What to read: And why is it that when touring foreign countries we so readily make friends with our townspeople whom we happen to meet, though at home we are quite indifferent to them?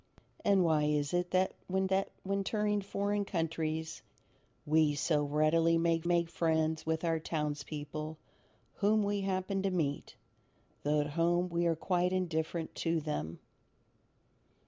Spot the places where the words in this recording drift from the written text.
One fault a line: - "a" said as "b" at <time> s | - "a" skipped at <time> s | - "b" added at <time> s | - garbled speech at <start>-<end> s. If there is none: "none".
- "that when" added at 1.9 s
- "make" added at 6.0 s